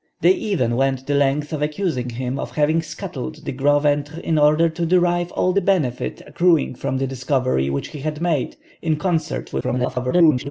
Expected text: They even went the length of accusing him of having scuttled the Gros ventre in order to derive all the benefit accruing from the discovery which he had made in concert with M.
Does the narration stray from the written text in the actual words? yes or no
yes